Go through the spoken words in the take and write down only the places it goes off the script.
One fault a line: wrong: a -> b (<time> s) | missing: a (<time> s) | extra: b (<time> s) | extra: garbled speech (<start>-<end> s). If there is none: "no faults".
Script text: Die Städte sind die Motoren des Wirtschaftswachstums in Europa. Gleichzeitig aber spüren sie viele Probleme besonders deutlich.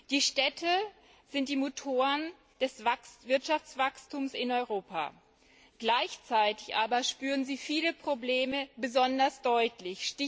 no faults